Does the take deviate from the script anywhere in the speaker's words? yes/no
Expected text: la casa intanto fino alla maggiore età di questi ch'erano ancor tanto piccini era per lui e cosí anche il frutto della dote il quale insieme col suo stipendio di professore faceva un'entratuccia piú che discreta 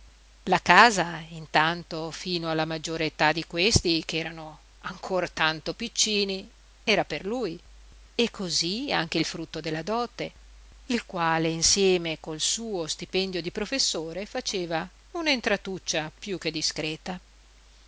no